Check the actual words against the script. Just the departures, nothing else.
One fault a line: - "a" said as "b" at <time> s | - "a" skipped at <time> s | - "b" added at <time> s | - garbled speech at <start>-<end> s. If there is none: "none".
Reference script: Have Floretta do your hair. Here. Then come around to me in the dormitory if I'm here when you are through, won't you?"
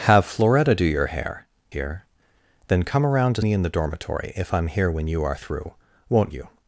none